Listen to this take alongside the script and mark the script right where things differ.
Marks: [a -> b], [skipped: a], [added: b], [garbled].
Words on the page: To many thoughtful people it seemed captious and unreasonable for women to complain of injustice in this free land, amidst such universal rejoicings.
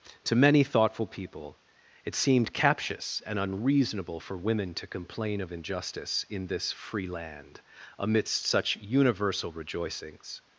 To many thoughtful people it seemed captious and unreasonable for women to complain of injustice in this free land, amidst such universal rejoicings.